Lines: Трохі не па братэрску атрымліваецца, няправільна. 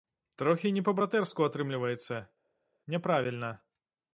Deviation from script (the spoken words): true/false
false